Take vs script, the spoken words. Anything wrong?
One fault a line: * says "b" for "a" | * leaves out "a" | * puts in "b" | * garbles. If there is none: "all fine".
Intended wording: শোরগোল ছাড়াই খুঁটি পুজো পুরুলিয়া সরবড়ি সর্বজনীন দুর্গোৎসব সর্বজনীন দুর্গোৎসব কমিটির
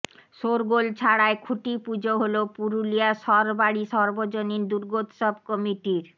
* puts in "হল"
* leaves out "সর্বজনীন দুর্গোৎসব"